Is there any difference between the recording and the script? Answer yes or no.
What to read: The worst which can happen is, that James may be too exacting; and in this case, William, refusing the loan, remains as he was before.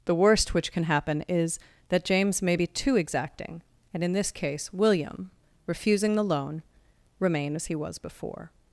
yes